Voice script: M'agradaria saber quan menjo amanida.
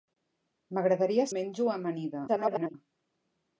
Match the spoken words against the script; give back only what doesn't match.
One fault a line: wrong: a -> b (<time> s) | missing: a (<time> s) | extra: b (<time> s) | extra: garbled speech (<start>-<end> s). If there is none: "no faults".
missing: saber quan (1.3 s)
extra: garbled speech (2.3-2.7 s)